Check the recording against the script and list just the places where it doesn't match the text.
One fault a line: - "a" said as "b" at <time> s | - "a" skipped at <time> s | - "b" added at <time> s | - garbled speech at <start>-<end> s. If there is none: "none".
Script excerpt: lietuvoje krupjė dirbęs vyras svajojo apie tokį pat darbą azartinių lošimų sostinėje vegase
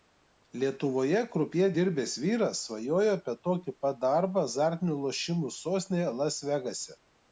- "las" added at 6.2 s